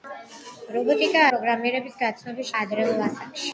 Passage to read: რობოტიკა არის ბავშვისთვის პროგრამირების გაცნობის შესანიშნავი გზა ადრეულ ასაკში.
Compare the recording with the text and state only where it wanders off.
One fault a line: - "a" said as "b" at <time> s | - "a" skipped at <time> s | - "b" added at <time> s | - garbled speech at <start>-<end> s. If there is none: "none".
- "არის ბავშვისთვის" skipped at 1.2 s
- "შესანიშნავი გზა" skipped at 2.5 s